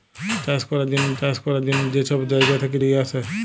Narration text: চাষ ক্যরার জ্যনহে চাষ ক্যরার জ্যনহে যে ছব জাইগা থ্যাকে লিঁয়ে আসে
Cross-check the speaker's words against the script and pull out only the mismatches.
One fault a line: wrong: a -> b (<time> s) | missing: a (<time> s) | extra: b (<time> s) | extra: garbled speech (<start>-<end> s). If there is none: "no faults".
no faults